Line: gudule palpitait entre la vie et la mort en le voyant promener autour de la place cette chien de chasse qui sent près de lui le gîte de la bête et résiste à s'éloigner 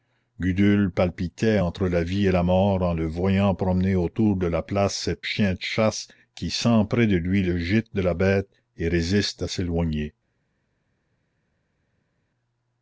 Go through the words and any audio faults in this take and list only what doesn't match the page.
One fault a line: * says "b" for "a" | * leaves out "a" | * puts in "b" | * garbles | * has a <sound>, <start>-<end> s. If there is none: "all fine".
all fine